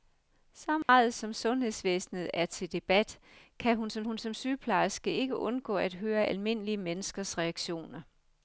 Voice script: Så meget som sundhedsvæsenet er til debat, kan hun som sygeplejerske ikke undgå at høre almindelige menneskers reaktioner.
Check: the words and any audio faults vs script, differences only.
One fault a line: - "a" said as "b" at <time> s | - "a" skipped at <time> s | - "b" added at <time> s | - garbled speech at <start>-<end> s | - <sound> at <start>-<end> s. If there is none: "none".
- dropout at 0.8-0.9 s
- "hun som" added at 4.0 s